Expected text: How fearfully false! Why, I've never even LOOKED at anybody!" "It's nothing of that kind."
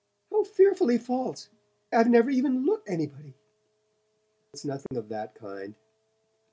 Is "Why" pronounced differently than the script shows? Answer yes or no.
yes